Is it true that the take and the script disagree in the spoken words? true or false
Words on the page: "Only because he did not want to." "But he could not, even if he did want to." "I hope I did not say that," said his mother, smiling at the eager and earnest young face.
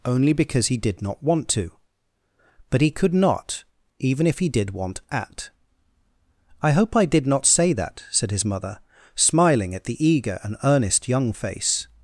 true